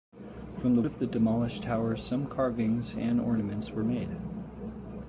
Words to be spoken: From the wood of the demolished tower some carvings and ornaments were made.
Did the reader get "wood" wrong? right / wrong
wrong